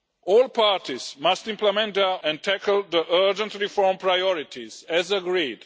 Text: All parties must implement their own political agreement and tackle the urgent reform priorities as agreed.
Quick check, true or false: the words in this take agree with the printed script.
false